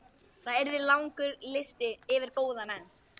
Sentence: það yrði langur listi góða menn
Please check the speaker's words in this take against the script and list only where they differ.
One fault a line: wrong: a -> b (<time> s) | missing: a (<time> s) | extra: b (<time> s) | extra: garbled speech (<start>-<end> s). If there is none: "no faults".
extra: yfir (2.2 s)